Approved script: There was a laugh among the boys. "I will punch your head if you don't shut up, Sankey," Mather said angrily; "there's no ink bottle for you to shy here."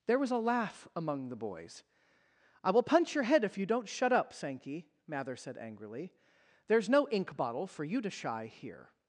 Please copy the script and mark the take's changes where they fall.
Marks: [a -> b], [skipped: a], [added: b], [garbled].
There was a laugh among the boys. "I will punch your head if you don't shut up, Sankey," Mather said angrily; "there's no ink bottle for you to shy here."